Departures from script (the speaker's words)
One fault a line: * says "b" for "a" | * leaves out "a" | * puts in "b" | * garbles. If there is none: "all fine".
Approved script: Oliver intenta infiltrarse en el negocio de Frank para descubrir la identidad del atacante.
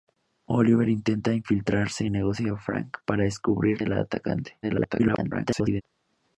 * leaves out "en el"
* leaves out "la identidad"
* garbles